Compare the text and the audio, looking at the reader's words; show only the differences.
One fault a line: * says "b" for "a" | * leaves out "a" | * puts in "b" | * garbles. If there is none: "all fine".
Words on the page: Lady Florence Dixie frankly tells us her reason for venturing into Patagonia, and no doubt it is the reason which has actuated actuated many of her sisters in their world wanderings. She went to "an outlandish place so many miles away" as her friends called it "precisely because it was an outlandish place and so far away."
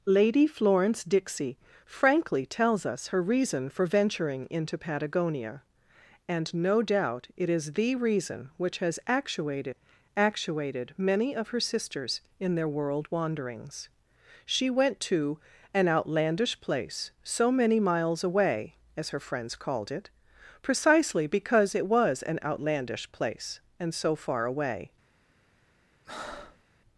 all fine